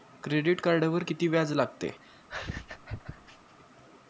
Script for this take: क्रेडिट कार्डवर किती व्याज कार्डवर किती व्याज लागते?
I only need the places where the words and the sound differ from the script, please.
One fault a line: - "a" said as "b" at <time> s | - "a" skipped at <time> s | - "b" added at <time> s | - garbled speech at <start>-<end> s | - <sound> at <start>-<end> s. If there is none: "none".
- "कार्डवर किती व्याज" skipped at 1.5 s
- laugh at 2.0-3.6 s